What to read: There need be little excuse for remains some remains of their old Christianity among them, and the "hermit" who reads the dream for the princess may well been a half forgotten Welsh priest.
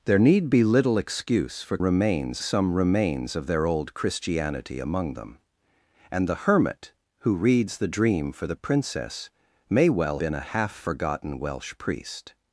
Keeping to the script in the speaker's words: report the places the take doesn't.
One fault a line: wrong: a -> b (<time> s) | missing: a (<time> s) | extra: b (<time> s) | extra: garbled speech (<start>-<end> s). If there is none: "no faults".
no faults